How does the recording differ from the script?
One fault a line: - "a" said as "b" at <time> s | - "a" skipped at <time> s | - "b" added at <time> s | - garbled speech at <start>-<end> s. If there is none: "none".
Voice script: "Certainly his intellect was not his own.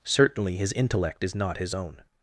- "was" said as "is" at 1.2 s